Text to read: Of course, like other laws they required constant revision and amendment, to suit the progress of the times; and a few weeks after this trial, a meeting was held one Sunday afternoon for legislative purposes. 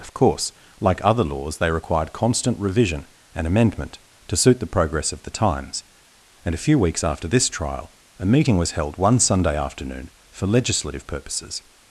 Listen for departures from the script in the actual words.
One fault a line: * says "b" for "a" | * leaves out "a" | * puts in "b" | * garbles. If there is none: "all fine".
all fine